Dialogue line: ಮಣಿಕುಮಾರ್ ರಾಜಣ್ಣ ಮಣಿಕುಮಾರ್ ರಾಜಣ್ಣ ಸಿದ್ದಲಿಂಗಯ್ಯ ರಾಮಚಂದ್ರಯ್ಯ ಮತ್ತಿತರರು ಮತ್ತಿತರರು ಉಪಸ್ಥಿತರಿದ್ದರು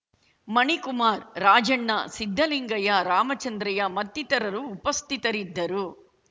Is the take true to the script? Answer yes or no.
no